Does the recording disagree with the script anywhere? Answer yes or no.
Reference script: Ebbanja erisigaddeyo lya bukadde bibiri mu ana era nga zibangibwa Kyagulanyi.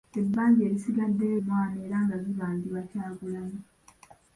yes